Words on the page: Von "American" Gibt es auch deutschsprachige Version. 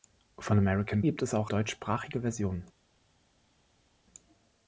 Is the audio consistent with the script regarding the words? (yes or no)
yes